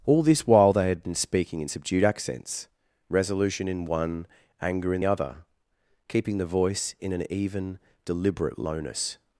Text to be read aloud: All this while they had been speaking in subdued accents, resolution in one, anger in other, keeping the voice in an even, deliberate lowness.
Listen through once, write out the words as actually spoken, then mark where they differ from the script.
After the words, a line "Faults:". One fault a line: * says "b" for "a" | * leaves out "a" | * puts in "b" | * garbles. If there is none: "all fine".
All this while they had been speaking in subdued accents, resolution in one, anger in other, keeping the voice in an even, deliberate lowness.
Faults:
all fine